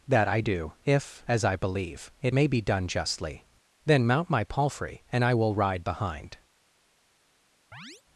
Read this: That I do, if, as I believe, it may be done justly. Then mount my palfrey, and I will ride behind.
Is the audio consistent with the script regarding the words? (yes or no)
yes